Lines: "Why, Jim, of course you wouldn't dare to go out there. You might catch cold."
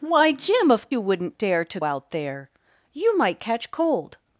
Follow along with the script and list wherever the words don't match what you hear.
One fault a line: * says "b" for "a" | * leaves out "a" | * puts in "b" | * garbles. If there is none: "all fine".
* leaves out "course"
* leaves out "go"